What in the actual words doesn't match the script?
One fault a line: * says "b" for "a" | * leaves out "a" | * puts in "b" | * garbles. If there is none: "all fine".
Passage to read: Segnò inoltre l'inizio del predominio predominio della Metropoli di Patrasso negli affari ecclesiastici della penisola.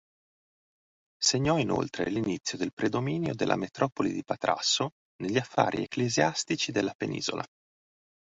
* leaves out "predominio"